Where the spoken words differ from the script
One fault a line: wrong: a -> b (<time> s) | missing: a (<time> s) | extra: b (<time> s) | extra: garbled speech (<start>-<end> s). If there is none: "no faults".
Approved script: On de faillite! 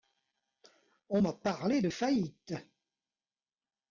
extra: m'a parlé (1.2 s)